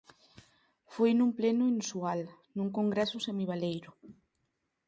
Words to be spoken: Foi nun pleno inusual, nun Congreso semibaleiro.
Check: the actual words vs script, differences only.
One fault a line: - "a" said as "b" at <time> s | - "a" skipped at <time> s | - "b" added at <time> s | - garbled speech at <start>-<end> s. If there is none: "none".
none